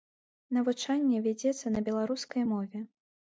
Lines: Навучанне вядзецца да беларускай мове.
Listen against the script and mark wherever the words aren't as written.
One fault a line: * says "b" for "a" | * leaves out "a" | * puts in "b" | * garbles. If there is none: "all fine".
* says "на" for "да"